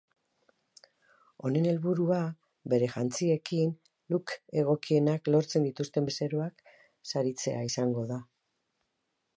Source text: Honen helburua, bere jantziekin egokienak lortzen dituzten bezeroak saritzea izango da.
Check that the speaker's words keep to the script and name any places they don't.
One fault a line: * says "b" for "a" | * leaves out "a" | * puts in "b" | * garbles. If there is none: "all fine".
* puts in "look"